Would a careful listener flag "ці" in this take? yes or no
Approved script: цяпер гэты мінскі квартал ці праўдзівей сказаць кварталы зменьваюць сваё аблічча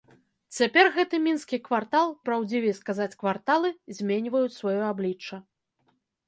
yes